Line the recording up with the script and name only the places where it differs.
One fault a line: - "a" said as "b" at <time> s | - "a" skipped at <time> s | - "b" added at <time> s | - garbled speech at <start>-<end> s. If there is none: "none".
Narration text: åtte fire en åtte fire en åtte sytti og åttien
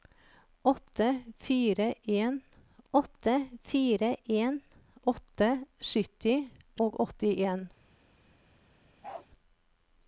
none